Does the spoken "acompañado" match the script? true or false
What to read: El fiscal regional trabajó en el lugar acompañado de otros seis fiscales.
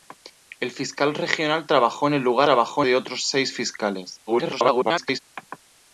false